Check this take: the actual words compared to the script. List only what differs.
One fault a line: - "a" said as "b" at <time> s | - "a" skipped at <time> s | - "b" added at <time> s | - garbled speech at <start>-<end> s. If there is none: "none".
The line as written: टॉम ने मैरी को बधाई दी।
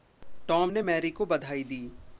none